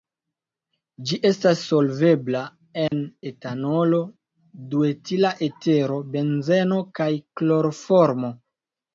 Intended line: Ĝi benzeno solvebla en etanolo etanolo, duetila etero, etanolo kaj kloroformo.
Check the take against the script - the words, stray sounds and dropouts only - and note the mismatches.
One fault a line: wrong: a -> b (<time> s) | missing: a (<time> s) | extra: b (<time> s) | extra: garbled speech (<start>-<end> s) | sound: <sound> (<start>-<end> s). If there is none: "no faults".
wrong: benzeno -> estas (1.3 s)
sound: dropout (2.9-2.9 s)
missing: etanolo (4.0 s)
wrong: etanolo -> benzeno (6.1 s)